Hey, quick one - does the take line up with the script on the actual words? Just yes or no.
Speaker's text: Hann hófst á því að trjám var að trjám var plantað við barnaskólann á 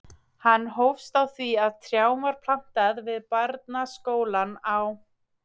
no